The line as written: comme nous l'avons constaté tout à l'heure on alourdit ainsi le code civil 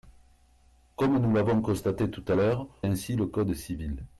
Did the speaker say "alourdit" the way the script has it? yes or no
no